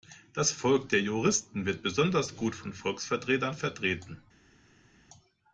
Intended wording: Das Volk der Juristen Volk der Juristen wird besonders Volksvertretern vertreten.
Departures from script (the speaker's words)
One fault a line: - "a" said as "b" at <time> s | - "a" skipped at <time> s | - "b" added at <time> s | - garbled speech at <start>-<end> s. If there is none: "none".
- "Volk der Juristen wird besonders" said as "wird besonders gut von" at 1.7 s